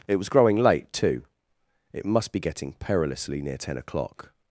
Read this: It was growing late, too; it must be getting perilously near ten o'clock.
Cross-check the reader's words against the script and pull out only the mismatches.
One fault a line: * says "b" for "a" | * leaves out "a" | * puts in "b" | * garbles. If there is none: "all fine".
all fine